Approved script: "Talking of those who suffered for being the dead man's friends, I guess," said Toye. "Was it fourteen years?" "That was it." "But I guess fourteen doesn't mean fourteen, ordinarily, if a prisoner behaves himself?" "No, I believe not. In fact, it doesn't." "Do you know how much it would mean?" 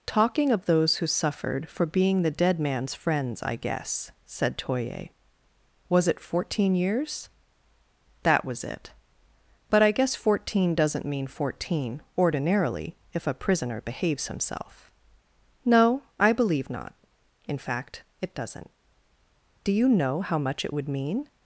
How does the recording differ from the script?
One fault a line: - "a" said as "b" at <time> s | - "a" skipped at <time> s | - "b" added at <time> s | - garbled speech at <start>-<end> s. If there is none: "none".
none